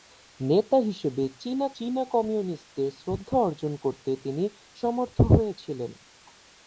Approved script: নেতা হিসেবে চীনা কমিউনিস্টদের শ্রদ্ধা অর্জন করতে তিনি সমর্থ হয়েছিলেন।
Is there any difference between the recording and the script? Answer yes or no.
yes